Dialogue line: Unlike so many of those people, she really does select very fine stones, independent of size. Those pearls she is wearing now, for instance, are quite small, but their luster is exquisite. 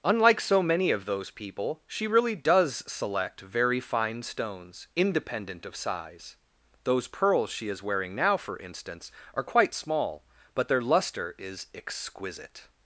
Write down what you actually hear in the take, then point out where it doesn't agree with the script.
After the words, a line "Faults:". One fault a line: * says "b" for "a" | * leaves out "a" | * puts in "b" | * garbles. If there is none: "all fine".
Unlike so many of those people, she really does select very fine stones, independent of size. Those pearls she is wearing now, for instance, are quite small, but their luster is exquisite.
Faults:
all fine